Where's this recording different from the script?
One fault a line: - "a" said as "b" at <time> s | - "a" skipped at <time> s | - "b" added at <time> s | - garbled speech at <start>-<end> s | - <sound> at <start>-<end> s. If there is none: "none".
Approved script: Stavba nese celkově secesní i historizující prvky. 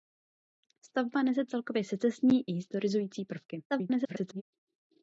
- garbled speech at 3.7-4.4 s